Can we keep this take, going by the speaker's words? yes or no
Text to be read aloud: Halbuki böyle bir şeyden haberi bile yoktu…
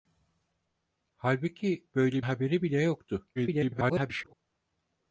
no